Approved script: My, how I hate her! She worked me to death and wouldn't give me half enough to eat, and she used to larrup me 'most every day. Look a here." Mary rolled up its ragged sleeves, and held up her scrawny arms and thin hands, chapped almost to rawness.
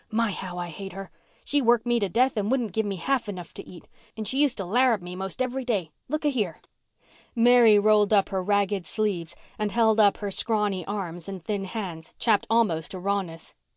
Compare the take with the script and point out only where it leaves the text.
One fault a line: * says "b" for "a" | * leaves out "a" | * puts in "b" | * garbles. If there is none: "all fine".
* says "her" for "its"